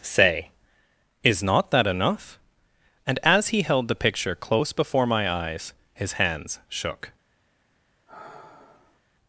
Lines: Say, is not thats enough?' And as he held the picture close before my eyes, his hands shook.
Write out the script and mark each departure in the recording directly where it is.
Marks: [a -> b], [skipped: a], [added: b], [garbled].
Say, is not [thats -> that] enough?' And as he held the picture close before my eyes, his hands shook.